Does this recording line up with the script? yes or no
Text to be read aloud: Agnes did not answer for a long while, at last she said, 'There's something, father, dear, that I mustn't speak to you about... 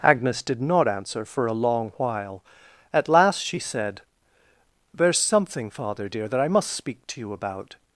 no